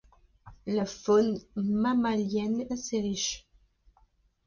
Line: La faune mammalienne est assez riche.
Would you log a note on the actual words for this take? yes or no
yes